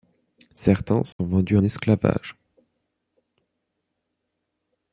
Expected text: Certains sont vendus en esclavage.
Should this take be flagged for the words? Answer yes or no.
yes